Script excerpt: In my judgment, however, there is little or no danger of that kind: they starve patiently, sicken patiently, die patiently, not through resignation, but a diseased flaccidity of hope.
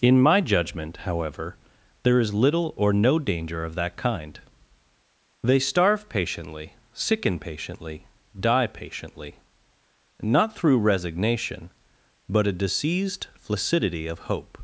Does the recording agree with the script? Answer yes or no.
yes